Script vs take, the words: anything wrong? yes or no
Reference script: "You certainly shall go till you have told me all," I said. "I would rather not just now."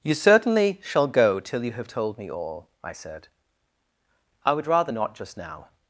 no